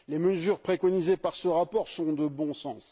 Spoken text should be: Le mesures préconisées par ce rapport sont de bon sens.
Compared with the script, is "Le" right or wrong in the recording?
wrong